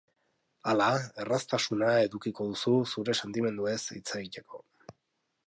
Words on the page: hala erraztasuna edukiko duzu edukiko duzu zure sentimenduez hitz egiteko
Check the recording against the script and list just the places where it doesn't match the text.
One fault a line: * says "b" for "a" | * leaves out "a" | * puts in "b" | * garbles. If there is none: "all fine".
* leaves out "edukiko duzu"